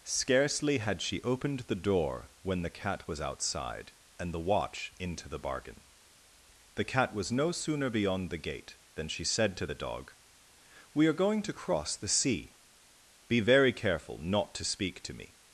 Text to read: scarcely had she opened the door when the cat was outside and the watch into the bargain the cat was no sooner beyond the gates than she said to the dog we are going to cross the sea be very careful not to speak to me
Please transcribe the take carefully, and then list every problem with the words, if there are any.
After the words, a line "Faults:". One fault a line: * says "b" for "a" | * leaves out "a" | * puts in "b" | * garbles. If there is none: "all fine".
scarcely had she opened the door when the cat was outside and the watch into the bargain the cat was no sooner beyond the gate than she said to the dog we are going to cross the sea be very careful not to speak to me
Faults:
* says "gate" for "gates"